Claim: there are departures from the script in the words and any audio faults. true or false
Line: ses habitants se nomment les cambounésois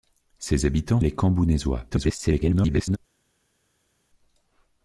true